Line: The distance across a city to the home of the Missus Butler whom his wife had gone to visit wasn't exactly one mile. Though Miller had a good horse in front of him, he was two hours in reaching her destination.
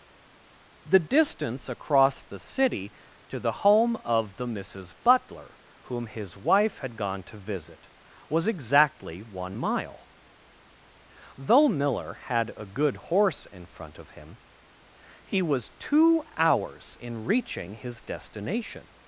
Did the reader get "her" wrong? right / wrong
wrong